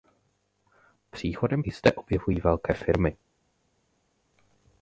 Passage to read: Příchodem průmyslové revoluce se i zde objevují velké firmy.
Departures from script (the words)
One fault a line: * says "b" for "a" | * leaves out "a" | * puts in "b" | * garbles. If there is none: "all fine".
* leaves out "průmyslové revoluce se"